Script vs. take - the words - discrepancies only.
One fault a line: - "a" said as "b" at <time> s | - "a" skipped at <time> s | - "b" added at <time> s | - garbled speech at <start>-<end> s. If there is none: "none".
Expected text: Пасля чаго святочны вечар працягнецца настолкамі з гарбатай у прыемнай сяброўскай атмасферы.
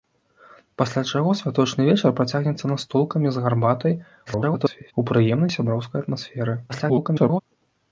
- garbled speech at 4.3-4.9 s
- garbled speech at 6.7-7.4 s